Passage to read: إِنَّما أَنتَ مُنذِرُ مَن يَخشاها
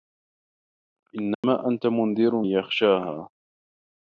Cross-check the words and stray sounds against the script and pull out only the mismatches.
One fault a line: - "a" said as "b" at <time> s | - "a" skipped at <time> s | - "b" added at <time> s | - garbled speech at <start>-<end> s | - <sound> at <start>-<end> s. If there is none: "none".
- dropout at 1.3-1.4 s
- "مَن" skipped at 2.4 s